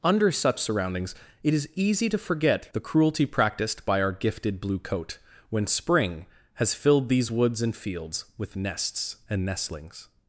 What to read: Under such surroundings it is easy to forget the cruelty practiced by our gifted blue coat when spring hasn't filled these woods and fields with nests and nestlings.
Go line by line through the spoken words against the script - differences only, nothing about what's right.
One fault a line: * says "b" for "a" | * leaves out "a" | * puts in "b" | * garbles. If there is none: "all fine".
* says "has" for "hasn't"